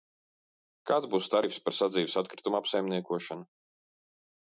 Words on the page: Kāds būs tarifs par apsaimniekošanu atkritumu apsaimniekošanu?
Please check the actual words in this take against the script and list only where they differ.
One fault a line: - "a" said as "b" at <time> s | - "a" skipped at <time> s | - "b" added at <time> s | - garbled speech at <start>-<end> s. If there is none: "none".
- "apsaimniekošanu" said as "sadzīves" at 1.8 s